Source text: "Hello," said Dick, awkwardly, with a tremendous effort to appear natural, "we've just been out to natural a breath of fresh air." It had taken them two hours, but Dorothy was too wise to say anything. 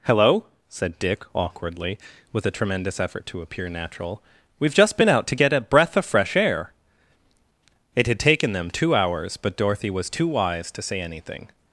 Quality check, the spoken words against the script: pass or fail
fail